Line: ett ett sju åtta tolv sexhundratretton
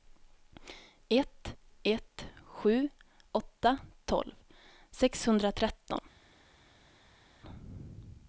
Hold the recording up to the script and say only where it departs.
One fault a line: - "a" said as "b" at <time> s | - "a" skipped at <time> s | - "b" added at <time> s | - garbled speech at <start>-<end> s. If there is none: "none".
none